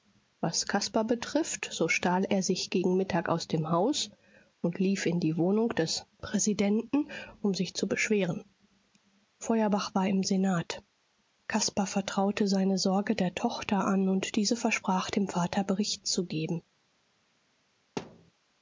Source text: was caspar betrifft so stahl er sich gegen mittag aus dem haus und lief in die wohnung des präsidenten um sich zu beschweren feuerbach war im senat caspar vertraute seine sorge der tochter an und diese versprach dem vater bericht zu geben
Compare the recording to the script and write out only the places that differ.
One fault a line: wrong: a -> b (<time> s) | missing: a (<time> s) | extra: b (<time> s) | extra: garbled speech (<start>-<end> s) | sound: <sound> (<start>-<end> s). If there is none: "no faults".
sound: thud (18.0-18.3 s)